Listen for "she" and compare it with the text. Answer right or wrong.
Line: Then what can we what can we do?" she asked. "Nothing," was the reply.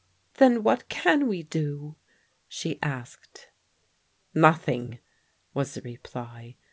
right